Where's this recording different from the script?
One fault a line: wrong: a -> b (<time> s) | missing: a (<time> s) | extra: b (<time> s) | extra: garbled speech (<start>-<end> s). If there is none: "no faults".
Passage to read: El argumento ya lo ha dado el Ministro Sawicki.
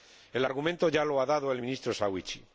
no faults